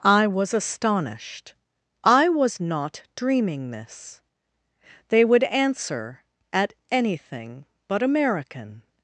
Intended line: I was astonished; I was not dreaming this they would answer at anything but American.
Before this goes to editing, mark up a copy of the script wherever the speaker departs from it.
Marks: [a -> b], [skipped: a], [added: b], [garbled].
I was astonished; I was not dreaming this they would answer at anything but American.